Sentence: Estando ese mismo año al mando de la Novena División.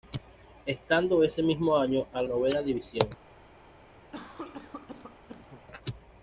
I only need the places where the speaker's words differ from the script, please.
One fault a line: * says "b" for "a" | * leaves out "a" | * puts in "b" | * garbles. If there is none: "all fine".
* leaves out "mando de la"